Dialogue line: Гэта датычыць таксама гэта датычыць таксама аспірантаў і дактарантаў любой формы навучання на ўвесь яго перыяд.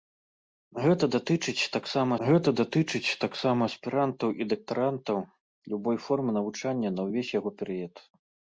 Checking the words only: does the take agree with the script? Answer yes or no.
yes